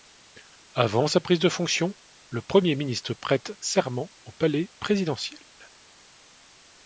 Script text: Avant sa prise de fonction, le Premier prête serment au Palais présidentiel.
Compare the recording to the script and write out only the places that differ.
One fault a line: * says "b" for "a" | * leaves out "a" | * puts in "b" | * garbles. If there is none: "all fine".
* puts in "ministre"